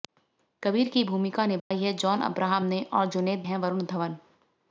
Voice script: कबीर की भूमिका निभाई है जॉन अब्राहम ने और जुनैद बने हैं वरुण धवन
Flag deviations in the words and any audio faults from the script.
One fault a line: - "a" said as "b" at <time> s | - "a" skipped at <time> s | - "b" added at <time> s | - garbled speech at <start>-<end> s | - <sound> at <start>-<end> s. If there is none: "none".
- dropout at 1.6-1.7 s
- "बने" skipped at 3.5 s